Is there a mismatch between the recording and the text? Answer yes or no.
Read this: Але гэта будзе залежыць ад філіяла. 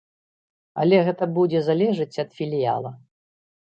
no